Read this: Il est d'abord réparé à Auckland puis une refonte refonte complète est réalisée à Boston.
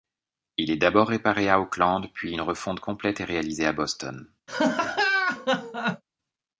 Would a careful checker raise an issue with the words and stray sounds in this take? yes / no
yes